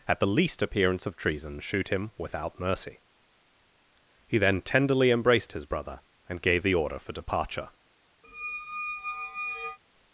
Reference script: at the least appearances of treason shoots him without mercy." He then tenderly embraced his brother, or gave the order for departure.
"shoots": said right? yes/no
no